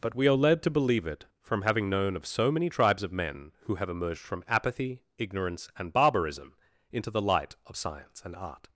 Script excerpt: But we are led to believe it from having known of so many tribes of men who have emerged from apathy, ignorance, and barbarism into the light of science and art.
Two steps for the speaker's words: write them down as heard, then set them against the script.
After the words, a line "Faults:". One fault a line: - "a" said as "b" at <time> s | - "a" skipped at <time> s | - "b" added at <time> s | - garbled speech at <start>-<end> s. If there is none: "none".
But we are led to believe it from having known of so many tribes of men who have emerged from apathy, ignorance, and barbarism into the light of science and art.
Faults:
none